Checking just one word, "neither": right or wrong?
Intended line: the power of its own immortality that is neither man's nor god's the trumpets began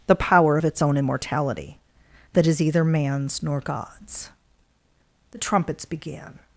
wrong